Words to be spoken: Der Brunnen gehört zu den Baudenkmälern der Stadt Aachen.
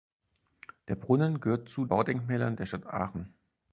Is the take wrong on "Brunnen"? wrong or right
right